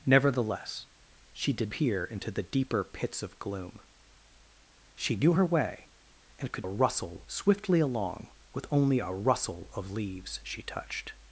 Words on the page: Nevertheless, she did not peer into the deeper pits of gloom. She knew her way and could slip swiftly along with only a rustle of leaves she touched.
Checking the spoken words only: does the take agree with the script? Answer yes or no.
no